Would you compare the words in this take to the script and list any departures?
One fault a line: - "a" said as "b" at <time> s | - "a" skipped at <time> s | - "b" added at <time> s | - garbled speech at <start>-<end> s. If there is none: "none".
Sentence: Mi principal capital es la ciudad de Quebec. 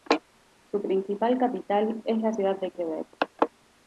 - "Mi" said as "Su" at 0.7 s